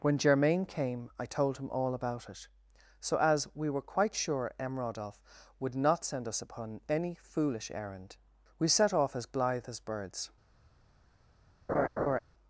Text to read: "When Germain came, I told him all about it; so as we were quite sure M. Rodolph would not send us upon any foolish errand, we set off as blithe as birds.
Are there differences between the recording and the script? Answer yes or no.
no